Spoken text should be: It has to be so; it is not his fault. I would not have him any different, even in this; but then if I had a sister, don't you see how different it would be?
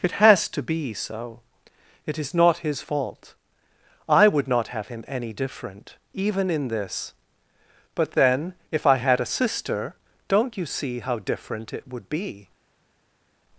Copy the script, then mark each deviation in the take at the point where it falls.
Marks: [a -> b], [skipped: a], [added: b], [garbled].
It has to be so; it is not his fault. I would not have him any different, even in this; but then if I had a sister, don't you see how different it would be?